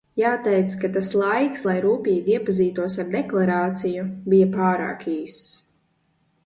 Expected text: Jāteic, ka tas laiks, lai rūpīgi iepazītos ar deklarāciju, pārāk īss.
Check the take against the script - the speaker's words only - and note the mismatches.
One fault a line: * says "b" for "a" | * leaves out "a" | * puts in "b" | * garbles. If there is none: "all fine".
* puts in "bija"